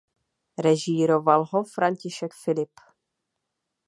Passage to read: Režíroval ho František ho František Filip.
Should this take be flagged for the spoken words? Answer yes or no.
yes